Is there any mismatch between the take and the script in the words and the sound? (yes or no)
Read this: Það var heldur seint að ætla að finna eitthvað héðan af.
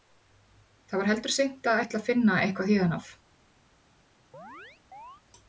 yes